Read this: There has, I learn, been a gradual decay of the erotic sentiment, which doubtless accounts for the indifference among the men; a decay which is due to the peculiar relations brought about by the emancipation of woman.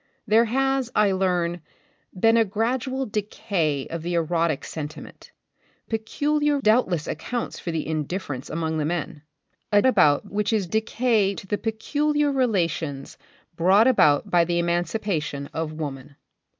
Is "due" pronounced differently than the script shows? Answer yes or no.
yes